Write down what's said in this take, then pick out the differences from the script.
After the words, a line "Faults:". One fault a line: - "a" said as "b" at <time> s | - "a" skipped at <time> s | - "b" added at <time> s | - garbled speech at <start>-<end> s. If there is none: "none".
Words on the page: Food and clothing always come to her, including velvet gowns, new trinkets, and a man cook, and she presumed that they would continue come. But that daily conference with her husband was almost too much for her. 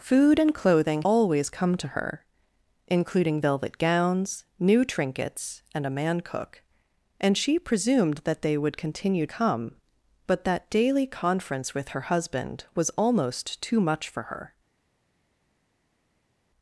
Food and clothing always come to her, including velvet gowns, new trinkets, and a man cook, and she presumed that they would continue come. But that daily conference with her husband was almost too much for her.
Faults:
none